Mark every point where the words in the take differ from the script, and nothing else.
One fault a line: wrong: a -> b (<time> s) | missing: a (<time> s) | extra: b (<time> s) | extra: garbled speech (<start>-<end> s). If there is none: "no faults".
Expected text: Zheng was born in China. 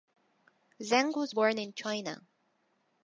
no faults